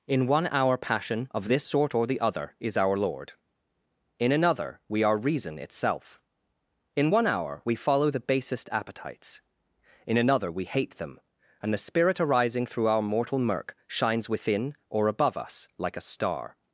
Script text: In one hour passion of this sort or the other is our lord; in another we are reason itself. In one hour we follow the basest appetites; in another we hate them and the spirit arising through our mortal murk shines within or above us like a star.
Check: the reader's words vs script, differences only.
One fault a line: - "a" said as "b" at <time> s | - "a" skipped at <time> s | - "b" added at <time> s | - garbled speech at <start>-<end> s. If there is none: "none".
none